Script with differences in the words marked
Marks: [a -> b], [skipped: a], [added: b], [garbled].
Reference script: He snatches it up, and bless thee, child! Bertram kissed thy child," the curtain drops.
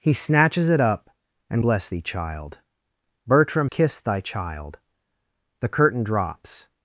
He snatches it up, and bless thee, child! Bertram kissed thy child," the curtain drops.